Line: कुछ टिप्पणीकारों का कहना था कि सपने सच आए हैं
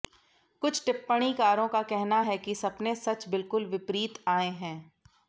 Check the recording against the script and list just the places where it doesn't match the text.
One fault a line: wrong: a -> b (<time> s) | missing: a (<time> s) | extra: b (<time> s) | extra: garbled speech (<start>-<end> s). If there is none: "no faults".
wrong: था -> है (2.2 s)
extra: बिल्कुल विपरीत (3.3 s)